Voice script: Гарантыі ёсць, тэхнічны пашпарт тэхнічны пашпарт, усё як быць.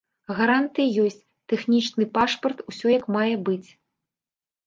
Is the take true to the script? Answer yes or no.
no